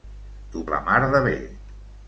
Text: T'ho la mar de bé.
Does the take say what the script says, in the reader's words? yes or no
yes